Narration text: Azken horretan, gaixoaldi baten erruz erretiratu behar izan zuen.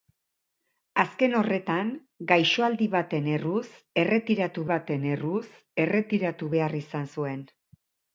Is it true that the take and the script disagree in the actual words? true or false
true